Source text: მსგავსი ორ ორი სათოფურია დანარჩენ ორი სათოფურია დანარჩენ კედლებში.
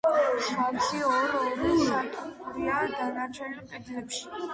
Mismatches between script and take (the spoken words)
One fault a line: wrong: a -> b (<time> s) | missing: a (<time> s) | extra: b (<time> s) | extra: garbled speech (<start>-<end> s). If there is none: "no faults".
missing: ორი სათოფურია დანარჩენ (3.5 s)